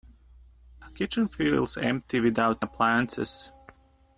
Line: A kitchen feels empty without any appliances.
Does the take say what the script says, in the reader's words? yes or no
no